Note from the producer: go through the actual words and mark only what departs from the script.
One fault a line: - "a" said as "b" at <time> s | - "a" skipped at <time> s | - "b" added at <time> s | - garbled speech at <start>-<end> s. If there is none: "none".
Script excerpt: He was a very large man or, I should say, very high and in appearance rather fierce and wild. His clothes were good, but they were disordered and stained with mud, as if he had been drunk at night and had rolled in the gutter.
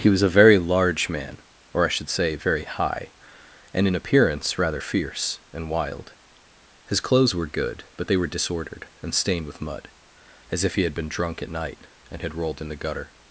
none